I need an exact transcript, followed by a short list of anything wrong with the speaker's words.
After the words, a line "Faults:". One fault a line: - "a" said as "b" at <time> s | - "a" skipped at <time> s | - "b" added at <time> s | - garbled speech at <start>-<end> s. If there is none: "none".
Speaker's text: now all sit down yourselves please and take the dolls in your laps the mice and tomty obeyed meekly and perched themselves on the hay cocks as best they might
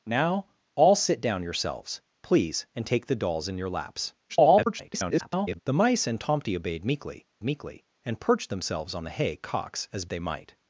now all sit down yourselves please and take the dolls in your laps [garbled] the mice and tomty obeyed meekly meekly and perched themselves on the hay cocks as they might
Faults:
- garbled speech at 4.3-5.6 s
- "meekly" added at 7.4 s
- "best" skipped at 10.1 s